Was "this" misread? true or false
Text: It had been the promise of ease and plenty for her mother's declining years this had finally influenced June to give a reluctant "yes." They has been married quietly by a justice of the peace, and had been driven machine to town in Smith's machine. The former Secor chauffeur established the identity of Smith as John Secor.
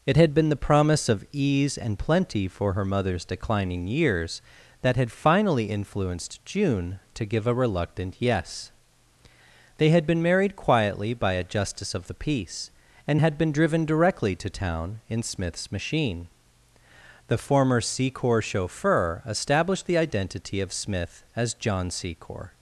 true